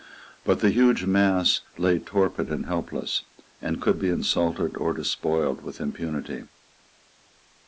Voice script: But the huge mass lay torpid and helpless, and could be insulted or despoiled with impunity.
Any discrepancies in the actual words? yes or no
no